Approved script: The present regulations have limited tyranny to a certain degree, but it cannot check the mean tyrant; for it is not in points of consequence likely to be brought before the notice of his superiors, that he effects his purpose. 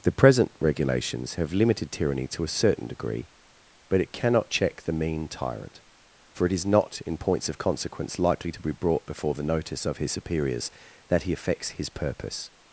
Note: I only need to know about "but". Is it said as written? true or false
true